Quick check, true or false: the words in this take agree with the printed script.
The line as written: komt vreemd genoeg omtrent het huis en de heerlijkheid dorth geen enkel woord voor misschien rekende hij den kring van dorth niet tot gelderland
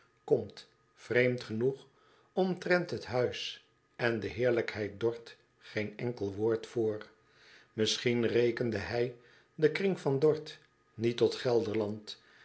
true